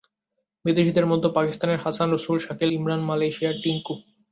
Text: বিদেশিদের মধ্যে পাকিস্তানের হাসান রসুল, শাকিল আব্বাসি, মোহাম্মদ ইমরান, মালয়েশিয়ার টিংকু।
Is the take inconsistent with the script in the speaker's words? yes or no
yes